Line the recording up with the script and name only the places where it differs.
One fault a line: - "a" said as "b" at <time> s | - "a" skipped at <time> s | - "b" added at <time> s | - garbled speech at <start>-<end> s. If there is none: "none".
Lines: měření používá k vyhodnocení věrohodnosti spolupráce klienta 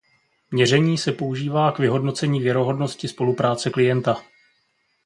- "se" added at 1.0 s